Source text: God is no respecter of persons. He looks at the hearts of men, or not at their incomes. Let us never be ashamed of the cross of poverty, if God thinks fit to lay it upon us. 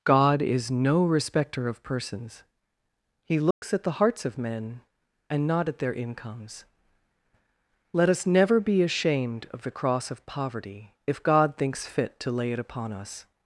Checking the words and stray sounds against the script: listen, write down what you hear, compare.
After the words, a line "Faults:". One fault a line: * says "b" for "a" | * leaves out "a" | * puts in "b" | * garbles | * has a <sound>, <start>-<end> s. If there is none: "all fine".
God is no respecter of persons. He looks at the hearts of men, and not at their incomes. Let us never be ashamed of the cross of poverty, if God thinks fit to lay it upon us.
Faults:
* has a dropout, 3.5-3.6 s
* says "and" for "or"